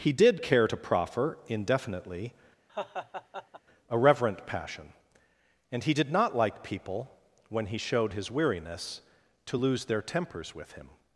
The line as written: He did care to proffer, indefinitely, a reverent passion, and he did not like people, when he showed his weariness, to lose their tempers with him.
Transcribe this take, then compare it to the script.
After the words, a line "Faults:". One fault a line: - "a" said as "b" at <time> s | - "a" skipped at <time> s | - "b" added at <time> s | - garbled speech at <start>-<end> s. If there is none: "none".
He did care to proffer, indefinitely, a reverent passion, and he did not like people, when he showed his weariness, to lose their tempers with him.
Faults:
none